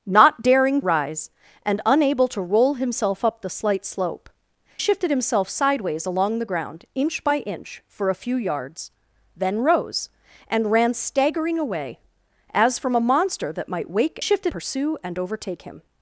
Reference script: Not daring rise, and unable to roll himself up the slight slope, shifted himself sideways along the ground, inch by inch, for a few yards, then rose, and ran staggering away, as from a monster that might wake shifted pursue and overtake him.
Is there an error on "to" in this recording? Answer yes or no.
no